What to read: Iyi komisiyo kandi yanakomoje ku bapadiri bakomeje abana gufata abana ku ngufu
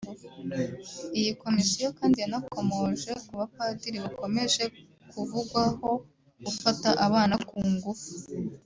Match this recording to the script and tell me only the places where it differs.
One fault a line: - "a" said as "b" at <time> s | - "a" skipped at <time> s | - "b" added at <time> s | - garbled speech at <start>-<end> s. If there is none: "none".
- "abana" said as "kuvugwaho" at 5.1 s